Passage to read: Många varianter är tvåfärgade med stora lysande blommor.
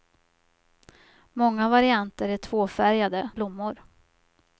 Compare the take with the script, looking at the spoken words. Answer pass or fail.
fail